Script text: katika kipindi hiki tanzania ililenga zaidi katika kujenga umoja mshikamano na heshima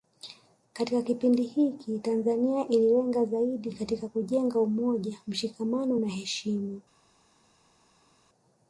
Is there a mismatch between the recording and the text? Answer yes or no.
no